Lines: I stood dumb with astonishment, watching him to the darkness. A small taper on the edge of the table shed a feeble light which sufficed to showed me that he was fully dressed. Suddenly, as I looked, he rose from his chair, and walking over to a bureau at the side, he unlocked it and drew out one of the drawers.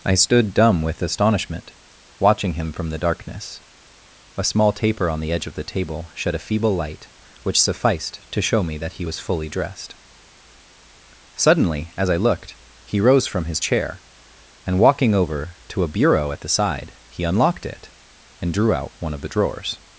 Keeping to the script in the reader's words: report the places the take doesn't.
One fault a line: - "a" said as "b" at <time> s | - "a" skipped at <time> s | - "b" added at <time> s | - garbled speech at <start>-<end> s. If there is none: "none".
- "to" said as "from" at 2.7 s
- "showed" said as "show" at 8.4 s